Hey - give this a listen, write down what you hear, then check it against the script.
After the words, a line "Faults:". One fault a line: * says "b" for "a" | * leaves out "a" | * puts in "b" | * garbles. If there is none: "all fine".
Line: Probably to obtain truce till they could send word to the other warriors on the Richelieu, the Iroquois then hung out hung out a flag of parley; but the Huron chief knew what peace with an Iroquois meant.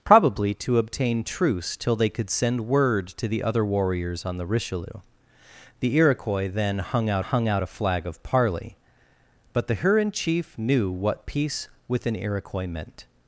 Probably to obtain truce till they could send word to the other warriors on the Richelieu, the Iroquois then hung out hung out a flag of parley; but the Huron chief knew what peace with an Iroquois meant.
Faults:
all fine